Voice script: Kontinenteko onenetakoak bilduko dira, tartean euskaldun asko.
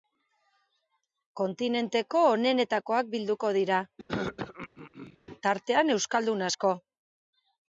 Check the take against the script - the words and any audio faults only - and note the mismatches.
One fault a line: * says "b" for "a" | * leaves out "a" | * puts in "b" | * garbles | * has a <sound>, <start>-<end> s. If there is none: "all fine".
* has a throat clearing, 4.1-5.2 s